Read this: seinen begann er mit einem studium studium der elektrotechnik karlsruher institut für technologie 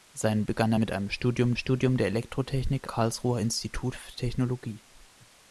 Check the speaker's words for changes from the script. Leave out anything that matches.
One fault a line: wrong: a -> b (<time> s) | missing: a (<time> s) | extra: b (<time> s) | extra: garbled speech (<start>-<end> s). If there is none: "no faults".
no faults